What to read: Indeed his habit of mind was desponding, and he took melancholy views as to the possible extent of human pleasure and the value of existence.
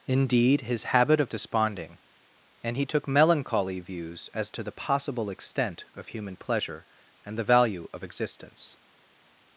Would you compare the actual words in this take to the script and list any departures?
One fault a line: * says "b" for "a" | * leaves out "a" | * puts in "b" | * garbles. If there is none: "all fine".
* leaves out "mind was"